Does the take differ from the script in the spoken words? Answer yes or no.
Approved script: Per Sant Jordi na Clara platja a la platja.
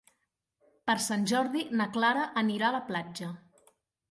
yes